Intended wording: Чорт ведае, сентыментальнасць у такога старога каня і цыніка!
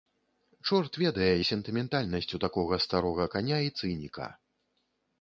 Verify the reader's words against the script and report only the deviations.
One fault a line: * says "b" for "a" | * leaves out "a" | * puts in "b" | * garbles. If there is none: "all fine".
all fine